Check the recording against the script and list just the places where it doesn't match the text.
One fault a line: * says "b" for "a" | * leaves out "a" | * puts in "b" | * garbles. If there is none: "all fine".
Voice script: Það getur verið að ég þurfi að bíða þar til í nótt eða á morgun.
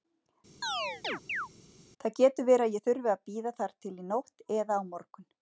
all fine